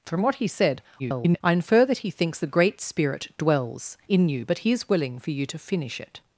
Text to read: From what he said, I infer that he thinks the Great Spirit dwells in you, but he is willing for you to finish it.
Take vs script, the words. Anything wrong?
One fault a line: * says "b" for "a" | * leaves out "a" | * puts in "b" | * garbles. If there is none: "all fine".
* garbles